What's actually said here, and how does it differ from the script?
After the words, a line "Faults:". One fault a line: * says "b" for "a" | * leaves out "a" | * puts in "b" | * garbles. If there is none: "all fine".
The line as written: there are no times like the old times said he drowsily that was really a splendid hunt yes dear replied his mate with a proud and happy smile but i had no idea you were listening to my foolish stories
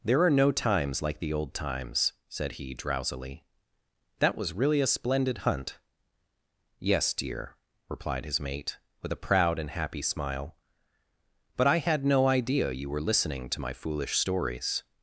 there are no times like the old times said he drowsily that was really a splendid hunt yes dear replied his mate with a proud and happy smile but i had no idea you were listening to my foolish stories
Faults:
all fine